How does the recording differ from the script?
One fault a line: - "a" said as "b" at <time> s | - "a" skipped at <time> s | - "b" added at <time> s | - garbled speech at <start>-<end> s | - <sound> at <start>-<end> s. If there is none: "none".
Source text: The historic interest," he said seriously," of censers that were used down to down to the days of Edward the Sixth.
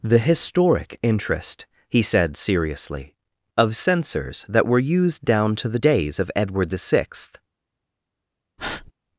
- "down to" skipped at 5.7 s
- breath at 8.6-8.9 s